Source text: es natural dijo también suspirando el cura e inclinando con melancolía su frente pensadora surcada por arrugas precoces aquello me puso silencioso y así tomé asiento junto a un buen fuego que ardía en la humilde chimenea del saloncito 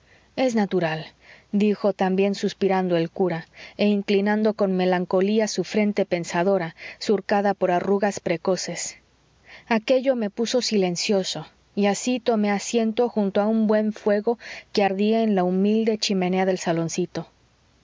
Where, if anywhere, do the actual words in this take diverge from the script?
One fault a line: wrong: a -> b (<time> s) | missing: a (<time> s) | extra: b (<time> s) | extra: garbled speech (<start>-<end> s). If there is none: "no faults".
no faults